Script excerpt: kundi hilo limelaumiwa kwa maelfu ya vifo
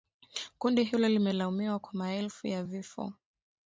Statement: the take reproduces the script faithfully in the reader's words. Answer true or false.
true